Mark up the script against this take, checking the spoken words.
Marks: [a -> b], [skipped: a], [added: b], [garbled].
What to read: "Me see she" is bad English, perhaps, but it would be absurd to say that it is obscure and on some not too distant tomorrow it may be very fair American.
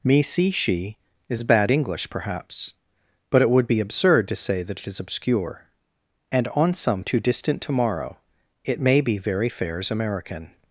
"Me see she" is bad English, perhaps, but it would be absurd to say that it is obscure and on some [skipped: not] too distant tomorrow it may be very [fair -> fairs] American.